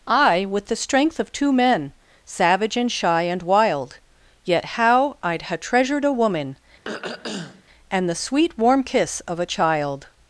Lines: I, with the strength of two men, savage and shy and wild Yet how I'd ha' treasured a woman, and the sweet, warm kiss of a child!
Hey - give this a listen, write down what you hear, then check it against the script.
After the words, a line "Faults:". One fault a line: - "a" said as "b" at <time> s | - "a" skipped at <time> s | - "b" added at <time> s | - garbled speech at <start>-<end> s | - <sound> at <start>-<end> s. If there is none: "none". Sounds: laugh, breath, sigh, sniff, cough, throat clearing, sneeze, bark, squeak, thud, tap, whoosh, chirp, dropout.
I, with the strength of two men, savage and shy and wild Yet how I'd ha' treasured a woman, and the sweet, warm kiss of a child!
Faults:
- throat clearing at 6.8-7.6 s